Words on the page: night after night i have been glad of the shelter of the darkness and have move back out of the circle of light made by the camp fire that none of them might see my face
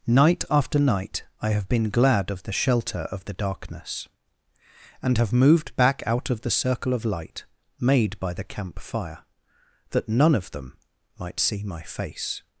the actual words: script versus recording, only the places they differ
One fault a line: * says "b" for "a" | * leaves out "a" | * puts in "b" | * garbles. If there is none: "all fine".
* says "moved" for "move"